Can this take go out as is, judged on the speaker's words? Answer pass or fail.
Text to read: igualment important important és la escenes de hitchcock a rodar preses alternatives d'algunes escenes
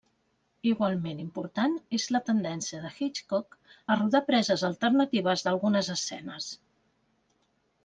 fail